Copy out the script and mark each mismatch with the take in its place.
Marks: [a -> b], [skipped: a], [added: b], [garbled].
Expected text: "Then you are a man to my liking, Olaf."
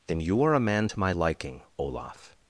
"Then you are a man to my liking, Olaf."